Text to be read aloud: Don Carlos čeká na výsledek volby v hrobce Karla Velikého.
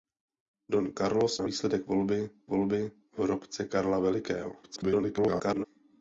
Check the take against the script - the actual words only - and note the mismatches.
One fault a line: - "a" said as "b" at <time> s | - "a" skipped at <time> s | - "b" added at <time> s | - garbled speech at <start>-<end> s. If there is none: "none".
- "čeká" skipped at 1.4 s
- "volby" added at 2.5 s
- garbled speech at 4.6-5.7 s